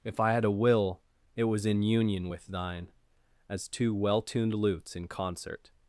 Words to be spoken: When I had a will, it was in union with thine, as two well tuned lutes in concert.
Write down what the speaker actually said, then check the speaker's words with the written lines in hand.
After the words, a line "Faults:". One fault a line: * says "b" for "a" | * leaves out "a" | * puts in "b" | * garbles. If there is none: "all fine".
If I had a will, it was in union with thine, as two well tuned lutes in concert.
Faults:
* says "If" for "When"